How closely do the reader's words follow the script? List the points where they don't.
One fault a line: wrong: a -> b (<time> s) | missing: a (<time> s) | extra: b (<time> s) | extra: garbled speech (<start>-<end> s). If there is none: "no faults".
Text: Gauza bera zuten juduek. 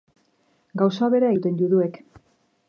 no faults